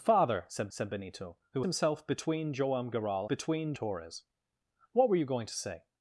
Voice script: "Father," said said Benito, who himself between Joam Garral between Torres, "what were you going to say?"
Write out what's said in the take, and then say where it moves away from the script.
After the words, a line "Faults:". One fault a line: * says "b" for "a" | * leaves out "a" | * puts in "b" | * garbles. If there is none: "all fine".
"Father," said said Benito, who himself between Joam Garral between Torres, "what were you going to say?"
Faults:
all fine